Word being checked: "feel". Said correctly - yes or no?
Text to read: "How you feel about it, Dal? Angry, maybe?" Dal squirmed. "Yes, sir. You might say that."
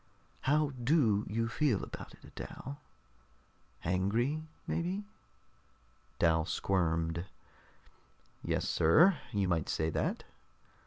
yes